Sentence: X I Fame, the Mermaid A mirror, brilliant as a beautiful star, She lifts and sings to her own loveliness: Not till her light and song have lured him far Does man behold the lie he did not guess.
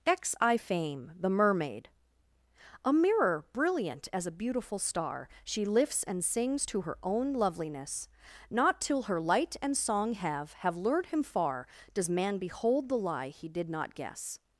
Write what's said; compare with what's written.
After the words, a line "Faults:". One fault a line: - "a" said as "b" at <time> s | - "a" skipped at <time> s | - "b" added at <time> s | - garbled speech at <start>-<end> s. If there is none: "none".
X I Fame, the Mermaid A mirror, brilliant as a beautiful star, She lifts and sings to her own loveliness: Not till her light and song have have lured him far Does man behold the lie he did not guess.
Faults:
- "have" added at 10.5 s